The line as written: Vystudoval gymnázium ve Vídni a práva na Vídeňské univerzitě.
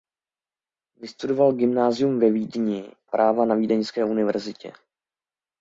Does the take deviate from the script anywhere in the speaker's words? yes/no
yes